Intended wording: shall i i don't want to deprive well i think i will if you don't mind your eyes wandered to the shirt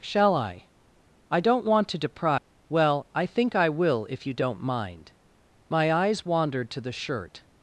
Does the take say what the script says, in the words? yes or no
no